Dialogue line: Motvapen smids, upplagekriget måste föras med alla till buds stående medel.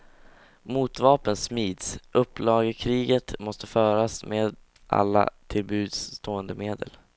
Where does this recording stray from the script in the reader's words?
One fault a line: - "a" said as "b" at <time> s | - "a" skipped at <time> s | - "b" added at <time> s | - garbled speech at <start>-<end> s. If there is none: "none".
none